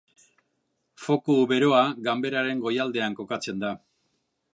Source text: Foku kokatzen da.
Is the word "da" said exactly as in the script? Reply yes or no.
yes